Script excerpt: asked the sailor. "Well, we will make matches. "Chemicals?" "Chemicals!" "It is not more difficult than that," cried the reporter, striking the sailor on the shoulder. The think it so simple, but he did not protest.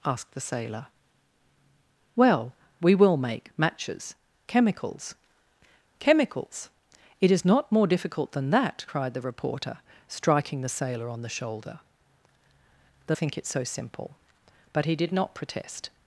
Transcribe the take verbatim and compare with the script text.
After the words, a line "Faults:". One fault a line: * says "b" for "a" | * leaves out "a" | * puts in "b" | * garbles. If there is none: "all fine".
asked the sailor. "Well, we will make matches. "Chemicals?" "Chemicals!" "It is not more difficult than that," cried the reporter, striking the sailor on the shoulder. The think it so simple, but he did not protest.
Faults:
all fine